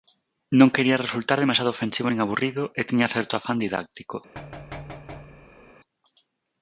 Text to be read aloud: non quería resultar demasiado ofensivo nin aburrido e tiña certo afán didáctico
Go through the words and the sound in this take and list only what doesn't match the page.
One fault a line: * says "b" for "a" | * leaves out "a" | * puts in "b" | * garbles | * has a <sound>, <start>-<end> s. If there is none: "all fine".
* has a thud, 4.3-5.7 s